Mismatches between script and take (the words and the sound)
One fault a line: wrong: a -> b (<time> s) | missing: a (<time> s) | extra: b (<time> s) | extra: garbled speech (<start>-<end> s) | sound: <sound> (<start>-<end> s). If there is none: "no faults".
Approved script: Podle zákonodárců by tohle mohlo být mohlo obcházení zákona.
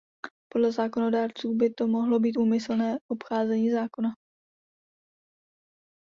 wrong: tohle -> to (1.7 s)
wrong: mohlo -> úmyslné (2.4 s)